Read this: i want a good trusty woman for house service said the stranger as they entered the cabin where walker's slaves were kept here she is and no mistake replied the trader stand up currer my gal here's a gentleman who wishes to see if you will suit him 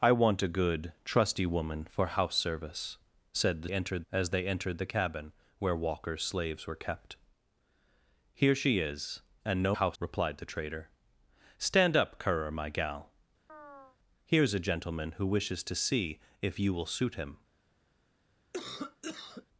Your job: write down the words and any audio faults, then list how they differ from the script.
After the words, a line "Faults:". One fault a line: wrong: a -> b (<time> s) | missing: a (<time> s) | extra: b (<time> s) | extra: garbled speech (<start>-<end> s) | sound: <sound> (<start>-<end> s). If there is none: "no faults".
i want a good trusty woman for house service said the entered as they entered the cabin where walker's slaves were kept here she is and no house replied the trader stand up currer my gal here's a gentleman who wishes to see if you will suit him
Faults:
wrong: stranger -> entered (3.7 s)
wrong: mistake -> house (9.7 s)
sound: chirp (13.5-14.0 s)
sound: cough (18.5-19.5 s)